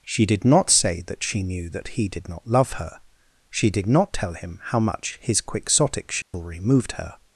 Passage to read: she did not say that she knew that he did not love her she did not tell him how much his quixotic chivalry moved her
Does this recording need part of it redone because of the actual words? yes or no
no